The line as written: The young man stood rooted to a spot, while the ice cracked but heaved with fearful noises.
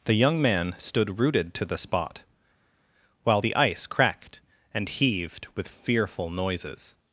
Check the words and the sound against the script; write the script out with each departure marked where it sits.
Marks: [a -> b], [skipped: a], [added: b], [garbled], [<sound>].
The young man stood rooted to [a -> the] spot, while the ice cracked [but -> and] heaved with fearful noises.